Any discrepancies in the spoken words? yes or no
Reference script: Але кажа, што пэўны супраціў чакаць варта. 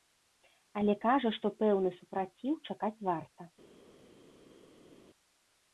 no